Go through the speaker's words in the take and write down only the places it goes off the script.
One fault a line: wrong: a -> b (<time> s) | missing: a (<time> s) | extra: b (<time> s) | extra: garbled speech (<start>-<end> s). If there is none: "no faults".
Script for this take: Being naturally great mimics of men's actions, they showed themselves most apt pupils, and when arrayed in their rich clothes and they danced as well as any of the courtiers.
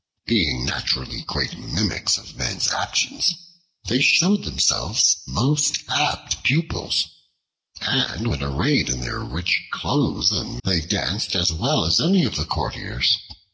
no faults